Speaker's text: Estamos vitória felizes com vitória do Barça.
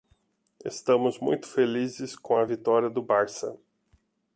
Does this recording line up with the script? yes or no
no